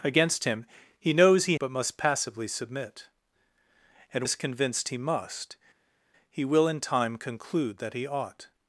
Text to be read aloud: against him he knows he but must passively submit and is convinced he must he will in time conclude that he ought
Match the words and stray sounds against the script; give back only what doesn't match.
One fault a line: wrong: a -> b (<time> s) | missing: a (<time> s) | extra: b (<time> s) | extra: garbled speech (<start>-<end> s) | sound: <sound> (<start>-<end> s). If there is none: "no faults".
no faults